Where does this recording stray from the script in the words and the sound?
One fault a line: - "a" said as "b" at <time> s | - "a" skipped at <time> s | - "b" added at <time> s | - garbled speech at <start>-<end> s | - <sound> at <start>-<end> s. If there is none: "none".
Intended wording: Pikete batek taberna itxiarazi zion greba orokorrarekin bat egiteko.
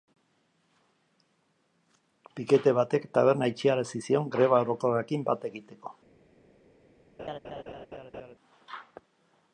- laugh at 7.2-8.3 s